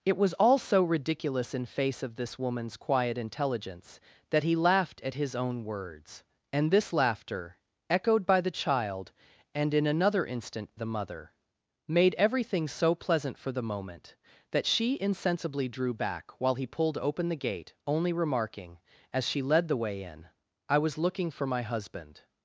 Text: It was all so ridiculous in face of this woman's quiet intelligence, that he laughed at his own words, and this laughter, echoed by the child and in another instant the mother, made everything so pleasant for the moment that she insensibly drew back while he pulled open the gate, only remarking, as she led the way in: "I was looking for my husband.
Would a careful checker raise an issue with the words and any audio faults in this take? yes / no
no